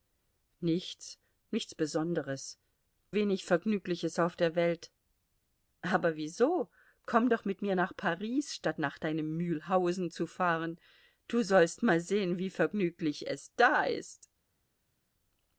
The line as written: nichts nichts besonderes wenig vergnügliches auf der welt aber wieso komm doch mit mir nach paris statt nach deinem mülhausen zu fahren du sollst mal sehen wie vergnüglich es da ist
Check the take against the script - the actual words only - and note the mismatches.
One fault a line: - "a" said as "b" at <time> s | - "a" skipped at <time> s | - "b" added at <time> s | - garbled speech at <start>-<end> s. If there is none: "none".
none